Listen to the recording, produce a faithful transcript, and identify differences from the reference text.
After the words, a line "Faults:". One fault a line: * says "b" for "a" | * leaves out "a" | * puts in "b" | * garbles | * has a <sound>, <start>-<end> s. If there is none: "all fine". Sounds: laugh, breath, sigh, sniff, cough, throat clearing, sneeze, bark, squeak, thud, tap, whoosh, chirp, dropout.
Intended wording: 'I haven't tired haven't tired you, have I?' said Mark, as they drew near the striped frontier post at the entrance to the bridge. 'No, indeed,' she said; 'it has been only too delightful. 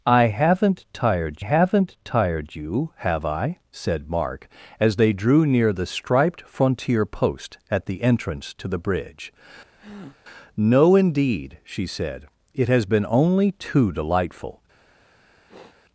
'I haven't tired haven't tired you, have I?' said Mark, as they drew near the striped frontier post at the entrance to the bridge. 'No, indeed,' she said; 'it has been only too delightful.
Faults:
* has a breath, 9.8-10.2 s
* has a sniff, 15.5-15.8 s